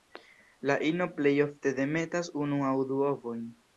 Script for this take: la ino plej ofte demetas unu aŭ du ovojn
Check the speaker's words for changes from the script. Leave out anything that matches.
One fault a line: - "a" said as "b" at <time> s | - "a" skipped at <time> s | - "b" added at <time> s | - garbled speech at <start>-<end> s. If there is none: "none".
none